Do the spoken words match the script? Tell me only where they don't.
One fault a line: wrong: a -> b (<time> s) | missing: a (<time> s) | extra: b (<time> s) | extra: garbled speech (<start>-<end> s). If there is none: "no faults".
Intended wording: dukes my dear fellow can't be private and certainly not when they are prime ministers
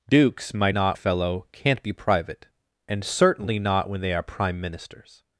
wrong: dear -> not (0.7 s)